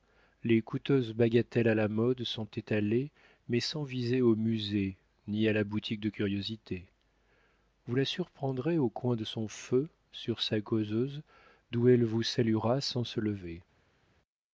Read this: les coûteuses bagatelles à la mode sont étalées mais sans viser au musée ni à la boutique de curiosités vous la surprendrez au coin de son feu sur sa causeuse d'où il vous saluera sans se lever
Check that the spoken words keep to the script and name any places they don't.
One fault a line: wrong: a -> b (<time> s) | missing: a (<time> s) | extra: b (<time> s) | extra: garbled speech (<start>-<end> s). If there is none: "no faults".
wrong: il -> elle (11.9 s)